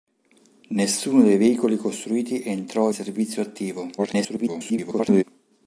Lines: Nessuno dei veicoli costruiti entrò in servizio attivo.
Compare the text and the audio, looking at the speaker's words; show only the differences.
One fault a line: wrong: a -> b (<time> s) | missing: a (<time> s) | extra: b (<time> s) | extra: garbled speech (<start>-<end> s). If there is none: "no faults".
missing: in (2.9 s)
extra: garbled speech (4.0-5.2 s)